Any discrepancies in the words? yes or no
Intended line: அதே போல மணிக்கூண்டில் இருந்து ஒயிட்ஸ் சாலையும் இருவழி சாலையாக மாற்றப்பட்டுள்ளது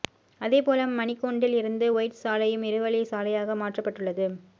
no